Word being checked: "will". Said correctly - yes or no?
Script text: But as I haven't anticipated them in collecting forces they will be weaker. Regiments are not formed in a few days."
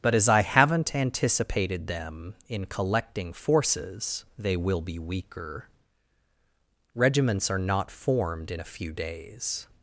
yes